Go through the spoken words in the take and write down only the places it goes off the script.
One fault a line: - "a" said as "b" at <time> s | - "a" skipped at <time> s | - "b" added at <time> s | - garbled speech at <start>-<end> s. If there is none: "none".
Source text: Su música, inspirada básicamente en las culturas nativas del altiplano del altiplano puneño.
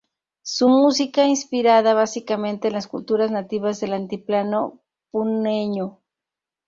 - "del altiplano" skipped at 4.8 s